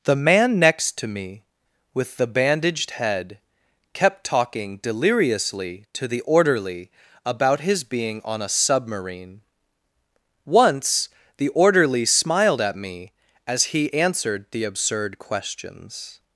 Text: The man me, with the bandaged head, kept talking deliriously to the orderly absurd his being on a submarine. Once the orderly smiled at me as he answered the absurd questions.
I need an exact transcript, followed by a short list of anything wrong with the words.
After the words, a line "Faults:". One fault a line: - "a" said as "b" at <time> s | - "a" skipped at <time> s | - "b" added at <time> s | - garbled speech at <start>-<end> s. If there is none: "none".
The man next to me, with the bandaged head, kept talking deliriously to the orderly about his being on a submarine. Once the orderly smiled at me as he answered the absurd questions.
Faults:
- "next to" added at 0.6 s
- "absurd" said as "about" at 7.2 s